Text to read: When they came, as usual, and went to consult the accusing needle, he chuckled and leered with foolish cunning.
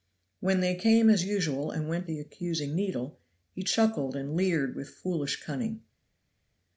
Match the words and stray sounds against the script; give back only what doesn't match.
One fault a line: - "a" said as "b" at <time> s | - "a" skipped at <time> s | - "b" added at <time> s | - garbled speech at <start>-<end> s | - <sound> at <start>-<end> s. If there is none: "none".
- "to consult" skipped at 2.1 s